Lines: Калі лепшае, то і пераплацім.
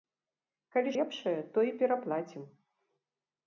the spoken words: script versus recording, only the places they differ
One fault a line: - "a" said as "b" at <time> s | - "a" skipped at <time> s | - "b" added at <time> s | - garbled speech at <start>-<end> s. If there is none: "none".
none